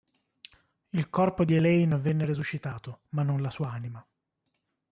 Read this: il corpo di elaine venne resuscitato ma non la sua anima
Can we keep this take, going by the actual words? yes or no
yes